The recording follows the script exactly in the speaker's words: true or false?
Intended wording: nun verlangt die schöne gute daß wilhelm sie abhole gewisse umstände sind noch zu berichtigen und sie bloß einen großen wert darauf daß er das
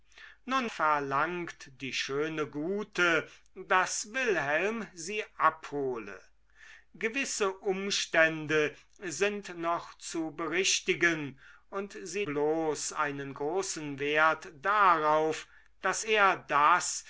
true